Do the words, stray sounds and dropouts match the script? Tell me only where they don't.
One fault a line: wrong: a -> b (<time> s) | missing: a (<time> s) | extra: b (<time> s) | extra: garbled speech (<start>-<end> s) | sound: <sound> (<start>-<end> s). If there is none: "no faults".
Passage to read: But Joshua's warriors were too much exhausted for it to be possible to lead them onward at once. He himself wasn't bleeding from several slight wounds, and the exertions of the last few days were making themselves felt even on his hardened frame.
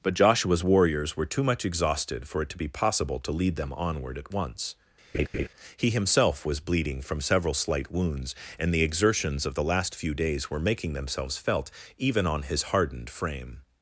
sound: laugh (5.1-5.5 s)
wrong: wasn't -> was (6.4 s)